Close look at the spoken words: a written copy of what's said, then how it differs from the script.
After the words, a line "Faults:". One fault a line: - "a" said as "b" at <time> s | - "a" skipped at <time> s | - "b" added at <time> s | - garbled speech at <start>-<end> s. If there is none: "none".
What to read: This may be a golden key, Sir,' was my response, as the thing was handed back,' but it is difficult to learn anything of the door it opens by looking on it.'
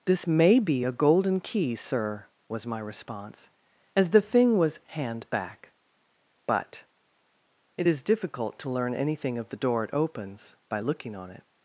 This may be a golden key, Sir,' was my response, as the thing was hand back,' but it is difficult to learn anything of the door it opens by looking on it.'
Faults:
- "handed" said as "hand" at 4.9 s